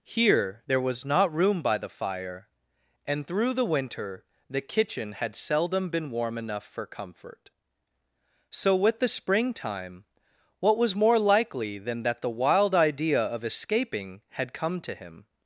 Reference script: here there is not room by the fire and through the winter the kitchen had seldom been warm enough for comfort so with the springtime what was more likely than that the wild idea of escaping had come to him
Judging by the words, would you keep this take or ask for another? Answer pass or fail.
fail